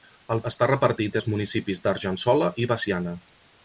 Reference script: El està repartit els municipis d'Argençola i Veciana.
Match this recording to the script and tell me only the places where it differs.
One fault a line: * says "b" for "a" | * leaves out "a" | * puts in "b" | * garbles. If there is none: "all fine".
all fine